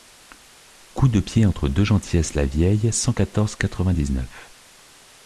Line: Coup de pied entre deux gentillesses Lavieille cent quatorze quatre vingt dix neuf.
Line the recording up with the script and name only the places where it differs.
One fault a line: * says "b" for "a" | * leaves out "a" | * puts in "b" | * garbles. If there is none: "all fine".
all fine